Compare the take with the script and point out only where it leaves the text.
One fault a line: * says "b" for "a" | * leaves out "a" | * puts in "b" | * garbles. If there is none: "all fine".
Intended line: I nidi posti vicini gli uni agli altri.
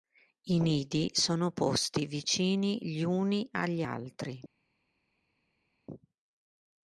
* puts in "sono"